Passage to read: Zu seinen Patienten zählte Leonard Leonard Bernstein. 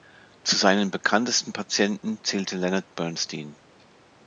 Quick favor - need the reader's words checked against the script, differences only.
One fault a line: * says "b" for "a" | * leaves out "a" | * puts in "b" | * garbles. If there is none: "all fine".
* puts in "bekanntesten"
* leaves out "Leonard"